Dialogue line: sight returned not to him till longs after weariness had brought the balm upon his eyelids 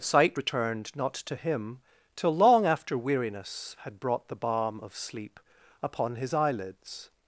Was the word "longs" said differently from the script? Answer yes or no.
yes